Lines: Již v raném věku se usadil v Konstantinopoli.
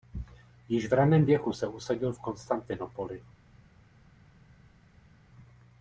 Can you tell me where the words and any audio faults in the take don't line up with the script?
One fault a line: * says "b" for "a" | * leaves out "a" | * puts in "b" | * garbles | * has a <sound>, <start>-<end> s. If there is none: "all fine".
all fine